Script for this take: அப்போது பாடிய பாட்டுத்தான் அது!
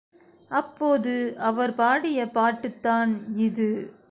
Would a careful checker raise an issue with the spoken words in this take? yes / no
yes